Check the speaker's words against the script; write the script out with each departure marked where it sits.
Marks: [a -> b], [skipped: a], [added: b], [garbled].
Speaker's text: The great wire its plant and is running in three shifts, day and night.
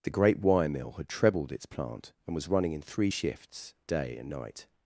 The great wire [added: mill had trebled] its plant and [is -> was] running in three shifts, day and night.